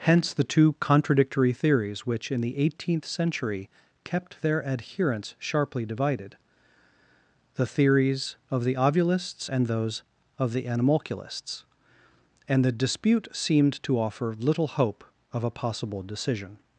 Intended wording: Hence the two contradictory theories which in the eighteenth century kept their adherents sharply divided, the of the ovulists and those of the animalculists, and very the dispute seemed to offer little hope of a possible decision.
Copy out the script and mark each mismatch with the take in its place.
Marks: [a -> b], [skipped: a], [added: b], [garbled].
Hence the two contradictory theories which in the eighteenth century kept their adherents sharply divided, the [added: theories] of the ovulists and those of the animalculists, and [skipped: very] the dispute seemed to offer little hope of a possible decision.